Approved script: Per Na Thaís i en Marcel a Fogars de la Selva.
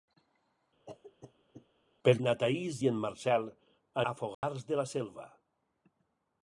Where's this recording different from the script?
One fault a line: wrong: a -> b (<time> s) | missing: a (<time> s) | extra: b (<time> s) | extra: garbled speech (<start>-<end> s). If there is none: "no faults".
no faults